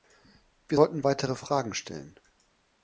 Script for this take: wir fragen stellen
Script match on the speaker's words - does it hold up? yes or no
no